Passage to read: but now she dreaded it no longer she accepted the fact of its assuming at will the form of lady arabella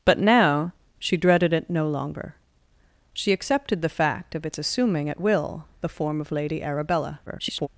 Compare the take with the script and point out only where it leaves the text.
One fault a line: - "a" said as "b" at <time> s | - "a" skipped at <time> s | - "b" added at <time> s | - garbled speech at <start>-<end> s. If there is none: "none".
- garbled speech at 7.3-7.7 s